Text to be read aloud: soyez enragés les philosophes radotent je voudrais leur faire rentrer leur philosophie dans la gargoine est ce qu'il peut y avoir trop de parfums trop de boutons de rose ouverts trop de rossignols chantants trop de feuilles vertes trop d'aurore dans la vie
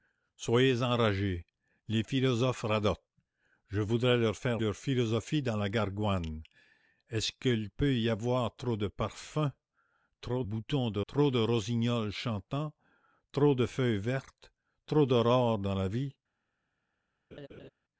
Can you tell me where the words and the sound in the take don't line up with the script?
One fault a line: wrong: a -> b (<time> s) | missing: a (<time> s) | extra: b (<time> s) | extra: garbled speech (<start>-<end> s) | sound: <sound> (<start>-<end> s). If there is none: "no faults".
missing: rentrer (4.6 s)
missing: de (10.4 s)
missing: rose ouverts (11.0 s)
sound: laugh (17.3-17.7 s)